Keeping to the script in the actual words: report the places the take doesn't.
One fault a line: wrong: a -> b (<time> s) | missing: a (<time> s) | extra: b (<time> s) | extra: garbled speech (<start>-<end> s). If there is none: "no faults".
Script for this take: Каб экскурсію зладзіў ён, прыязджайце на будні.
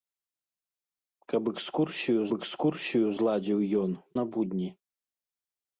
extra: экскурсію (2.4 s)
missing: прыязджайце (3.9 s)